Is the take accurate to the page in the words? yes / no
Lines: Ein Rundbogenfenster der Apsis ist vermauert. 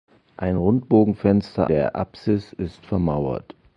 yes